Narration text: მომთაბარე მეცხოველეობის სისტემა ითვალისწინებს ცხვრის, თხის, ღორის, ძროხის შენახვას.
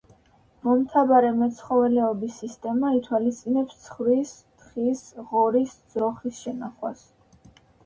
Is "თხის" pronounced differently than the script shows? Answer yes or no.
no